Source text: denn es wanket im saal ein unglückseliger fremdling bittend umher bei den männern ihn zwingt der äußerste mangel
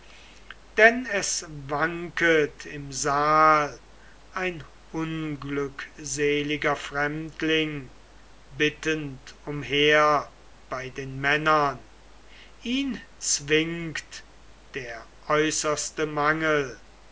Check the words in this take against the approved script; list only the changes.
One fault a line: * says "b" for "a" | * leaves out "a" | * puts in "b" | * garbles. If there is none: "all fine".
all fine